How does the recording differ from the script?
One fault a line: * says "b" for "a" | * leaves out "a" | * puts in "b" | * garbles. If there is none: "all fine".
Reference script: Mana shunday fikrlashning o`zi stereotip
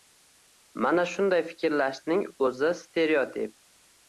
all fine